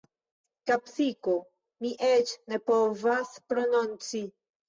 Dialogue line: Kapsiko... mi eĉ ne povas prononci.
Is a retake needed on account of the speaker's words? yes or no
no